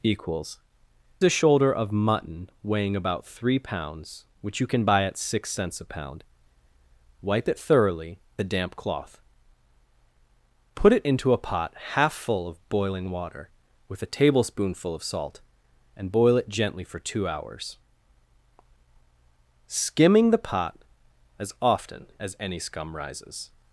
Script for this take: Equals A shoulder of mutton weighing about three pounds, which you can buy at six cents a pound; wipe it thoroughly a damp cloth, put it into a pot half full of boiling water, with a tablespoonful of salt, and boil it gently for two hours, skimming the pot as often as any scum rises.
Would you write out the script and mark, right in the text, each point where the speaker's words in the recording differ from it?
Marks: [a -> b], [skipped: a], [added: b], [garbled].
Equals A shoulder of mutton weighing about three pounds, which you can buy at six cents a pound; wipe it thoroughly a damp cloth, put it into a pot half full of boiling water, with a tablespoonful of salt, and boil it gently for two hours, skimming the pot as often as any scum rises.